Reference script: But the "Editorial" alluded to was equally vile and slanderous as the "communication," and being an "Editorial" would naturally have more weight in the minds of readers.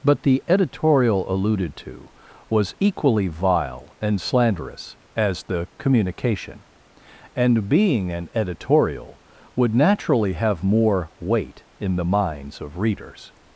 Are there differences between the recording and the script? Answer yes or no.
no